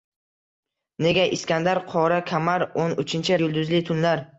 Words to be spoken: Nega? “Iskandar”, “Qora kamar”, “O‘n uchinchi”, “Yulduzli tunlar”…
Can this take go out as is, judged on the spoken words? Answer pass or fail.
pass